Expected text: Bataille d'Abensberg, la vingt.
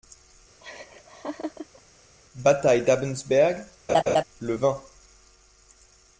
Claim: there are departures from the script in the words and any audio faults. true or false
true